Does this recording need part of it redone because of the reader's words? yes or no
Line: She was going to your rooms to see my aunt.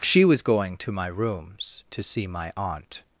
yes